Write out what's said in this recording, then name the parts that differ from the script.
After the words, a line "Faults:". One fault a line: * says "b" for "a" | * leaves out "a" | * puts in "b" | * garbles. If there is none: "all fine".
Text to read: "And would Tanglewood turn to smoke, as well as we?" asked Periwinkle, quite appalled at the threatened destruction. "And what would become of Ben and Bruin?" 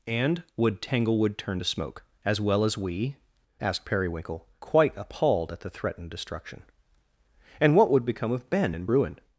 "And would Tanglewood turn to smoke, as well as we?" asked Periwinkle, quite appalled at the threatened destruction. "And what would become of Ben and Bruin?"
Faults:
all fine